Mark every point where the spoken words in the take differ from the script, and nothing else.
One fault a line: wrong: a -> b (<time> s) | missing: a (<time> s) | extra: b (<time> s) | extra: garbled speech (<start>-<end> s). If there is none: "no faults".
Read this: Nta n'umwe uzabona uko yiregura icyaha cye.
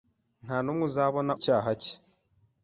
missing: uko yiregura (1.3 s)